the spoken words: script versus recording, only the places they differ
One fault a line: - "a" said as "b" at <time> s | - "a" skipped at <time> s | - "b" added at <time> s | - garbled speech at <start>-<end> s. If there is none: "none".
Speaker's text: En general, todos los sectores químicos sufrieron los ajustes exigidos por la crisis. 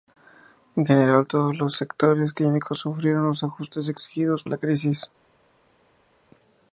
- "por" skipped at 4.4 s